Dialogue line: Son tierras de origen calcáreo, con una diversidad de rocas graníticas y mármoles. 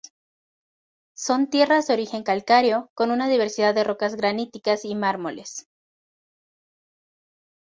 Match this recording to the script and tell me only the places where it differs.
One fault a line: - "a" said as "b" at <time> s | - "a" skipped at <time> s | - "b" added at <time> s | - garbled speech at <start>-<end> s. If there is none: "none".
none